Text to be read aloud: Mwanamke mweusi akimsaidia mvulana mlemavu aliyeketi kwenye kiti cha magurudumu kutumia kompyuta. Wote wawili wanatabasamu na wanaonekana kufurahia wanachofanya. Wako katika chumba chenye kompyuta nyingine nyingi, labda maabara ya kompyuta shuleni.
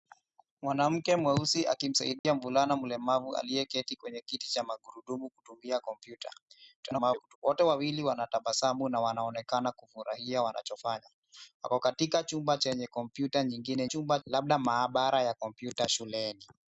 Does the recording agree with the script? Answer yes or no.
no